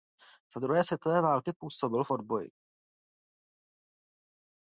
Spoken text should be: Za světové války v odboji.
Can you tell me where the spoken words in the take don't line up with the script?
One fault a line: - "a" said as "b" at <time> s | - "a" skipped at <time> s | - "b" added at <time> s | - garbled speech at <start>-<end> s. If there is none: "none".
- "druhé" added at 0.6 s
- "působil" added at 1.6 s